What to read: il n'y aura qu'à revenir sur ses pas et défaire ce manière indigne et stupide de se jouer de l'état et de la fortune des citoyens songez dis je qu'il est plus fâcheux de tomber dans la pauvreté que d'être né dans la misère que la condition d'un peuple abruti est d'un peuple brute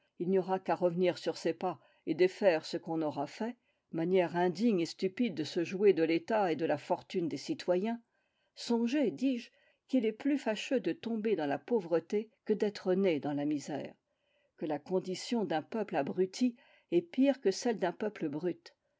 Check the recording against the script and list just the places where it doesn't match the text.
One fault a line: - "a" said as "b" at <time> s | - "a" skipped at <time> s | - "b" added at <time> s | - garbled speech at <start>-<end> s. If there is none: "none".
- "qu'on aura fait" added at 2.8 s
- "pire que celle" added at 17.0 s